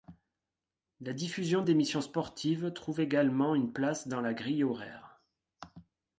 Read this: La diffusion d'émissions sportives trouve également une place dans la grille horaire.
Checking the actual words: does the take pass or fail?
pass